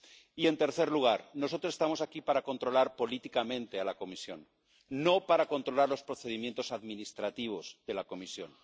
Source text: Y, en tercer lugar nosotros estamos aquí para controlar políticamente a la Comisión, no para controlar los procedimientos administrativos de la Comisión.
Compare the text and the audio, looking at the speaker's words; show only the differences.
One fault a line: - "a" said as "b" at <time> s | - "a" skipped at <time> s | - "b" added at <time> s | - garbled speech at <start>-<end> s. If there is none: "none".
none